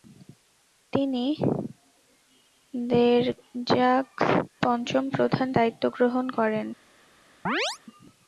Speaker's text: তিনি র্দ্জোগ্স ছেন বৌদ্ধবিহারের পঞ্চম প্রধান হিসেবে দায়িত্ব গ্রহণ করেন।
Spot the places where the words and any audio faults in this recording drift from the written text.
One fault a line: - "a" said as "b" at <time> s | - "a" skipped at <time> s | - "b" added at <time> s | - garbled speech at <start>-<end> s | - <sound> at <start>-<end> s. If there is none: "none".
- "ছেন বৌদ্ধবিহারের" skipped at 4.2 s
- "হিসেবে" skipped at 5.5 s
- chirp at 7.5-7.8 s